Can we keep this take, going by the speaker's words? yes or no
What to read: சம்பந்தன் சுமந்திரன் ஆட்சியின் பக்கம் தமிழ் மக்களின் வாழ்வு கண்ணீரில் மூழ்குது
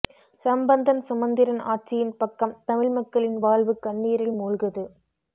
yes